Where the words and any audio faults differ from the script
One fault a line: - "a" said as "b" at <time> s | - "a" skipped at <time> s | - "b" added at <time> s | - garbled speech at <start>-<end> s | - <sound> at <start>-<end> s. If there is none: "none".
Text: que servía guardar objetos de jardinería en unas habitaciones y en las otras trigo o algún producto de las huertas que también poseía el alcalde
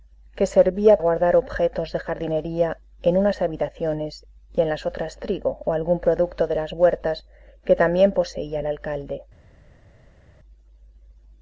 none